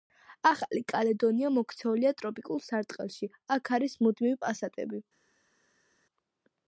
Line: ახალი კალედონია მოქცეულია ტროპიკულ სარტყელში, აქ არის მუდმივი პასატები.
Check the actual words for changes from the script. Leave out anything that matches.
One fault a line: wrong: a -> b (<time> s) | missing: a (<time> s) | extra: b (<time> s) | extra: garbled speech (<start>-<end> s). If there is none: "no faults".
no faults